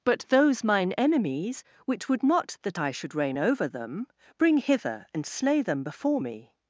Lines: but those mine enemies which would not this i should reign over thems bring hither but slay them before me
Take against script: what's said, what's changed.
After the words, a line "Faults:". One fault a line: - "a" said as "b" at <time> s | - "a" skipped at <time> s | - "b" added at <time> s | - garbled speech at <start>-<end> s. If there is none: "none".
but those mine enemies which would not that i should reign over them bring hither and slay them before me
Faults:
- "this" said as "that" at 2.6 s
- "thems" said as "them" at 3.7 s
- "but" said as "and" at 5.1 s